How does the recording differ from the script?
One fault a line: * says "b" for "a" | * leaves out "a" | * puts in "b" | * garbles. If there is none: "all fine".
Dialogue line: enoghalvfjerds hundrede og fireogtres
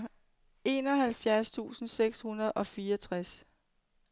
* puts in "tusind seks"